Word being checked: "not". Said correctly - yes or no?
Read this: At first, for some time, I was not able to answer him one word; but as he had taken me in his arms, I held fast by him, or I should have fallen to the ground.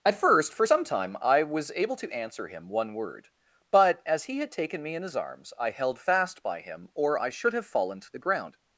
no